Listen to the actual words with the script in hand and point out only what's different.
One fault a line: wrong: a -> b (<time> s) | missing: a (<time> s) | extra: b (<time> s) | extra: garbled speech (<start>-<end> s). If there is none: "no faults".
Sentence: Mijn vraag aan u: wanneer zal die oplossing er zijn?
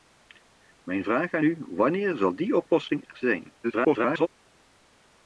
extra: garbled speech (3.6-4.3 s)